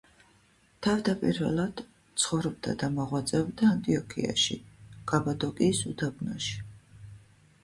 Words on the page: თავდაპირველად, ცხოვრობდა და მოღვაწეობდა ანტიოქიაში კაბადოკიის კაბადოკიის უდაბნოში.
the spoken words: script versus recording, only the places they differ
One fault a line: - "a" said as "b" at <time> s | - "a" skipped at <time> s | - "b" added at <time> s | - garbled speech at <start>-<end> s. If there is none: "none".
- "კაბადოკიის" skipped at 5.8 s